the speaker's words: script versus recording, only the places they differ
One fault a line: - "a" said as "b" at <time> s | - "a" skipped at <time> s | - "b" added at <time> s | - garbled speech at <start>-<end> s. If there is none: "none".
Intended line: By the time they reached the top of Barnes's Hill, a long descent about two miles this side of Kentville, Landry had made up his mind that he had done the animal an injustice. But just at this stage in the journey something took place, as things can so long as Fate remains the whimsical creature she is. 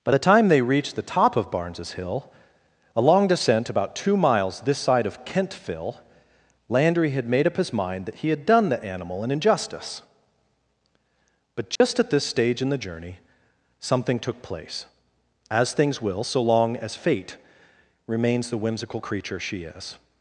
- "can" said as "will" at 16.0 s